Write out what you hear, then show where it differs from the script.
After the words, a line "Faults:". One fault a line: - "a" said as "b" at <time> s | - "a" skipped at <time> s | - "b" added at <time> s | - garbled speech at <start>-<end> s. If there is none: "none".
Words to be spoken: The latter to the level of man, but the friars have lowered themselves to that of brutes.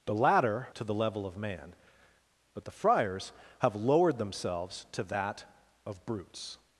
The latter to the level of man, but the friars have lowered themselves to that of brutes.
Faults:
none